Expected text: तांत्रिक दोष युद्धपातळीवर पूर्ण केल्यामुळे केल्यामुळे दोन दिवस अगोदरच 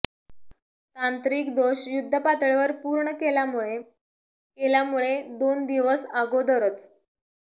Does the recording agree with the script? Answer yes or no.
yes